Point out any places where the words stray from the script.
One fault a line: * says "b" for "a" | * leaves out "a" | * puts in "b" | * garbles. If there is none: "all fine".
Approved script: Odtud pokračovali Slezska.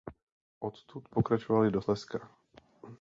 * puts in "do"